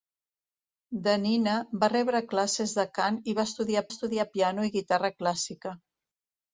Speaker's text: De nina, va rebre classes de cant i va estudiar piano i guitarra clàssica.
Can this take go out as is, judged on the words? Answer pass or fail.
fail